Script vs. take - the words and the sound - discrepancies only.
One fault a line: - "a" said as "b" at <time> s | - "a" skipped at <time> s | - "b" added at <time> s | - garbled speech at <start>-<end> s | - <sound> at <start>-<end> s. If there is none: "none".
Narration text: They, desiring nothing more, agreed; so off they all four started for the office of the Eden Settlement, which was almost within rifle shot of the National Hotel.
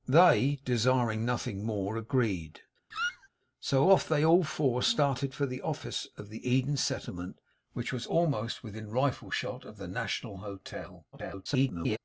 - squeak at 2.9-3.3 s
- garbled speech at 11.1-12.0 s